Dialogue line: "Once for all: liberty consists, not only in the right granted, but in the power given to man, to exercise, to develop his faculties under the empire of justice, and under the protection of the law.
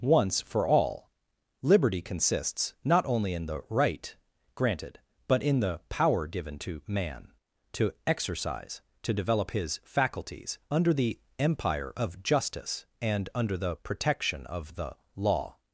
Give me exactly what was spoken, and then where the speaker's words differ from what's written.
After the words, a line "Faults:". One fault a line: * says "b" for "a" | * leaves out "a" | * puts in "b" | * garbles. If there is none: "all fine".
"Once for all: liberty consists, not only in the right granted, but in the power given to man, to exercise, to develop his faculties under the empire of justice, and under the protection of the law.
Faults:
all fine